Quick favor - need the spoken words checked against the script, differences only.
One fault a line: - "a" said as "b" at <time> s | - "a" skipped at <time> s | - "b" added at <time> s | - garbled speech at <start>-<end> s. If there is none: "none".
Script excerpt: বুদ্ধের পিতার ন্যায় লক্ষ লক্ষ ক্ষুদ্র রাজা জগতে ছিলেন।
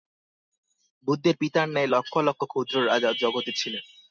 none